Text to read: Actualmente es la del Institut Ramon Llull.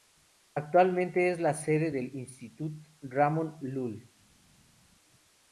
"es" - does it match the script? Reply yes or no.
yes